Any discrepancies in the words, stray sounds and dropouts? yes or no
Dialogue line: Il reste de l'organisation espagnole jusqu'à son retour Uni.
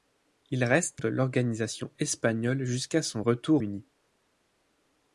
no